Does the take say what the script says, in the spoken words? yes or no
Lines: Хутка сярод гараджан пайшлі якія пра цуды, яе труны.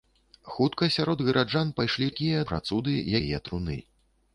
yes